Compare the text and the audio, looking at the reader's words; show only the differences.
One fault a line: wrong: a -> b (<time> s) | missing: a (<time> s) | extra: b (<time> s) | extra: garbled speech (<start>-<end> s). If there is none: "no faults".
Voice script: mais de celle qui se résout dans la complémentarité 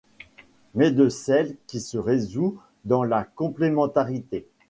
no faults